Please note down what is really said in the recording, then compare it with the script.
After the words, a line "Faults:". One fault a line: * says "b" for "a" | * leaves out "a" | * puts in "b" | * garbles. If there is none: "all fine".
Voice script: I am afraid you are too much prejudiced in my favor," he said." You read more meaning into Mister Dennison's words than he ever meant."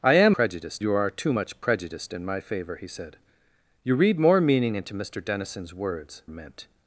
I am prejudiced you are too much prejudiced in my favor," he said." You read more meaning into Mister Dennison's words meant."
Faults:
* says "prejudiced" for "afraid"
* leaves out "than he ever"